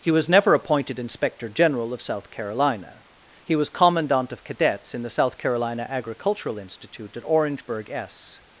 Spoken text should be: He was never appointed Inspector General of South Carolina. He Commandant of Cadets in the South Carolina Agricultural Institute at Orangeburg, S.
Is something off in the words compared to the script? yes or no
yes